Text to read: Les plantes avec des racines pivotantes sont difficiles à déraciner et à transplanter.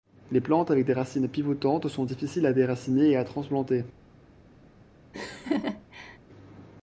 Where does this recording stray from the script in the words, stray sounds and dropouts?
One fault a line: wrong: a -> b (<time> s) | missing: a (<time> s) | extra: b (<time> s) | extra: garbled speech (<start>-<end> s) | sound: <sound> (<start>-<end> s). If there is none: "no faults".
sound: laugh (5.1-6.2 s)